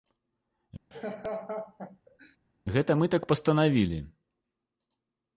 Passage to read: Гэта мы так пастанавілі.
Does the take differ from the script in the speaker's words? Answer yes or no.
no